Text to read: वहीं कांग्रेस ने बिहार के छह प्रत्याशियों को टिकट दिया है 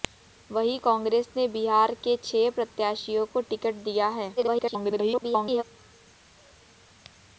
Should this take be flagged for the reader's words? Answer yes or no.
yes